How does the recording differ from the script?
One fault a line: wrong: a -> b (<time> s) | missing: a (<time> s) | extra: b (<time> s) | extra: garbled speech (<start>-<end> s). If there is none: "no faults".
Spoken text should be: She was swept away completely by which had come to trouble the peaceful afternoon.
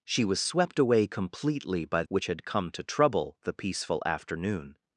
no faults